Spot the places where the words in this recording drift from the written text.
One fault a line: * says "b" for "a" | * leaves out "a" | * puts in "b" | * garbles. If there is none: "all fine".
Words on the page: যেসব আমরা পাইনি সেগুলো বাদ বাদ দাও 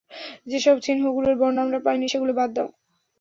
* puts in "চিহ্নগুলোর বর্ণ"
* leaves out "বাদ"